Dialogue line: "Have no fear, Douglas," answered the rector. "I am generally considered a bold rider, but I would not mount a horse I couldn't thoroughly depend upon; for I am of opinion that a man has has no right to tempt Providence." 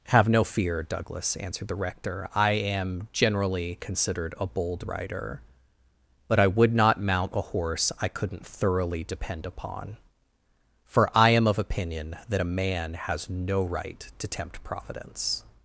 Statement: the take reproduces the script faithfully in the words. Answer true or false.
false